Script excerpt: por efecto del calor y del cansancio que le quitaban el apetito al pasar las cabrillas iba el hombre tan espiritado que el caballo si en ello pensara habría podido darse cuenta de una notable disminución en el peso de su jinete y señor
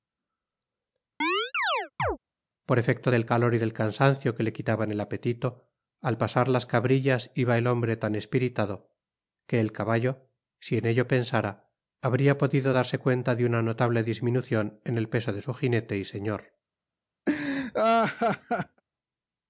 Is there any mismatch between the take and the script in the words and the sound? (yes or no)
yes